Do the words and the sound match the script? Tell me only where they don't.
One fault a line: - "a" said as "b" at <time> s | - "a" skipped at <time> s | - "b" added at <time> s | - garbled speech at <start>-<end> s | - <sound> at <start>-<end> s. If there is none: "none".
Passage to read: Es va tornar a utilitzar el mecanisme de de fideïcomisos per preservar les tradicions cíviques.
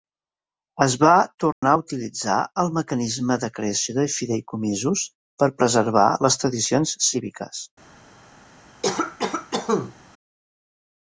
- dropout at 1.5-1.6 s
- "creació" added at 3.6 s
- cough at 8.8-9.9 s